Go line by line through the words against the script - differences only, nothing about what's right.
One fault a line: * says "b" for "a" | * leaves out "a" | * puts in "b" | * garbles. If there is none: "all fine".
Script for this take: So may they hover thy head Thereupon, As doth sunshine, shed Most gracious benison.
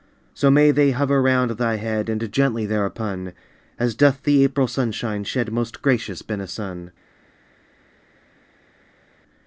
* puts in "round"
* puts in "And gently"
* puts in "the April"